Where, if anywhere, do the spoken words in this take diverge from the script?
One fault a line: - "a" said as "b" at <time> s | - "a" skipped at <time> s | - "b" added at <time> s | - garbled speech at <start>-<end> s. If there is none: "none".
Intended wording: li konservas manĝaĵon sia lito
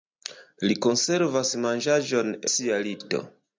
none